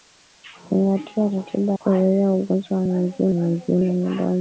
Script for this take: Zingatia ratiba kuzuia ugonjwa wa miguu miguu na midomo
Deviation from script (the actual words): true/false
false